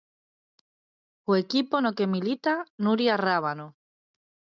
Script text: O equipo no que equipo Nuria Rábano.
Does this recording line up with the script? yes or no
no